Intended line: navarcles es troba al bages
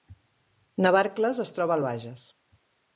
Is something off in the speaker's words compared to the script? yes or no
no